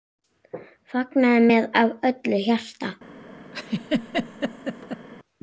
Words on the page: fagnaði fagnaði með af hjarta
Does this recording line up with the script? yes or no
no